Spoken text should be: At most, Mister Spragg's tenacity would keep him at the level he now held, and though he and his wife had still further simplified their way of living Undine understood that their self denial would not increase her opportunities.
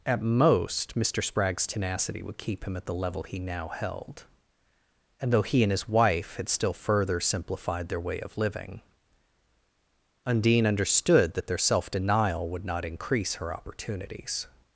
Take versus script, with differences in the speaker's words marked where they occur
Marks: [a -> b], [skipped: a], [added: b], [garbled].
At most, Mister Spragg's tenacity would keep him at the level he now held, and though he and his wife had still further simplified their way of living Undine understood that their self denial would not increase her opportunities.